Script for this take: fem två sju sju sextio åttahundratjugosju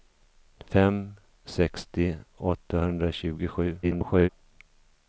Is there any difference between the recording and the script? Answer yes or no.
yes